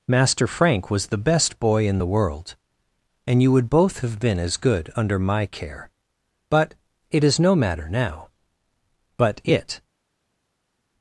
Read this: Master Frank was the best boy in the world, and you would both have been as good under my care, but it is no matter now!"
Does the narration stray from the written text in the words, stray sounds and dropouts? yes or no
yes